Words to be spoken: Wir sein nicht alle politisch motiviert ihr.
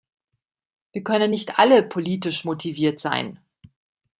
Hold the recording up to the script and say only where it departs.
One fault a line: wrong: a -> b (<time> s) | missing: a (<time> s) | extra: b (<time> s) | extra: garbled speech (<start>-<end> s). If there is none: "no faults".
wrong: sein -> können (1.0 s)
wrong: ihr -> sein (3.0 s)